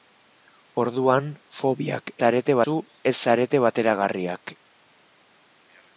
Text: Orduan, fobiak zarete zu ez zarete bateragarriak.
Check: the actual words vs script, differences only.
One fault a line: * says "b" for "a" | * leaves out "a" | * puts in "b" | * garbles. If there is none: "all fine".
all fine